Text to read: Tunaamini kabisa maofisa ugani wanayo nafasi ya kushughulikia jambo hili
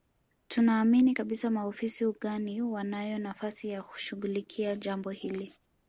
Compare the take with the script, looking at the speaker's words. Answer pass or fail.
pass